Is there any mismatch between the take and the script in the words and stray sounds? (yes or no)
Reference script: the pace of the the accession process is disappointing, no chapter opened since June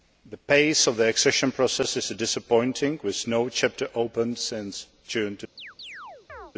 yes